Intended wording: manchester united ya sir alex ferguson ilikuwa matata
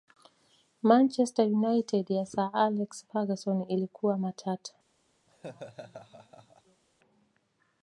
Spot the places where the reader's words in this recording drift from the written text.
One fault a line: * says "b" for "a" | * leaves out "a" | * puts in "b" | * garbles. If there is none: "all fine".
all fine